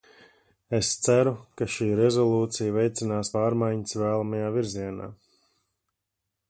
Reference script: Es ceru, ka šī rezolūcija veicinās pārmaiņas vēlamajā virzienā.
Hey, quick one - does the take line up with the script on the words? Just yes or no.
yes